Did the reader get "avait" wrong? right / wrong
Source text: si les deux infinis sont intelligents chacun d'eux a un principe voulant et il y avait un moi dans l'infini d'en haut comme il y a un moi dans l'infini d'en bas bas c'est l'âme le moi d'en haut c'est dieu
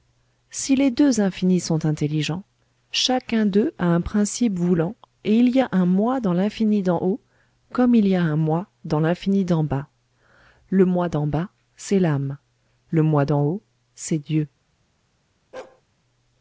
wrong